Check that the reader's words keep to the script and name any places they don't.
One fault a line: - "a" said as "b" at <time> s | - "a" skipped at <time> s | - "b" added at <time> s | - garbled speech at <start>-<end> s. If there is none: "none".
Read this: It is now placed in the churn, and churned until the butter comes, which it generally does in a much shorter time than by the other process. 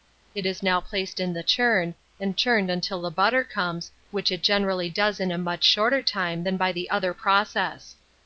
none